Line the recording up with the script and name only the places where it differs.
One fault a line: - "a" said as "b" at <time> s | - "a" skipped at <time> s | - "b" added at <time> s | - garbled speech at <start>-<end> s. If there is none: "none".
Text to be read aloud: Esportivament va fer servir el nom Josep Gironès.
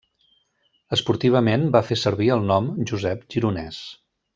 none